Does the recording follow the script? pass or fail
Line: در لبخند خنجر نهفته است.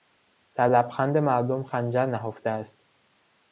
fail